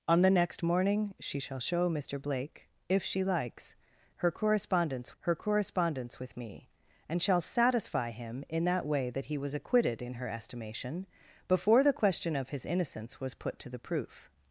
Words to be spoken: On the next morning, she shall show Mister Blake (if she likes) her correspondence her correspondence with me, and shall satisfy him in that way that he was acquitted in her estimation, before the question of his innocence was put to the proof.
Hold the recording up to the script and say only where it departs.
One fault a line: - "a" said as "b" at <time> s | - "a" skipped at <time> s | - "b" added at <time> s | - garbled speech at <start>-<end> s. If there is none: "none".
none